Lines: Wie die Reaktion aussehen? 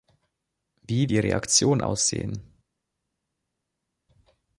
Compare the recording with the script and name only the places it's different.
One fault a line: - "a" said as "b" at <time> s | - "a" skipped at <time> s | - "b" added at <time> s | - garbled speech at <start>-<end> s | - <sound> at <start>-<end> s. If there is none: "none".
none